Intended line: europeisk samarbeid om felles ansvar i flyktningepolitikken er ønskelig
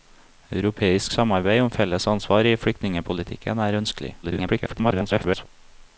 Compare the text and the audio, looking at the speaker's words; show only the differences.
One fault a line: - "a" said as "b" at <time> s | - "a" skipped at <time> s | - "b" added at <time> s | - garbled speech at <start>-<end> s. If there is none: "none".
- garbled speech at 4.2-5.5 s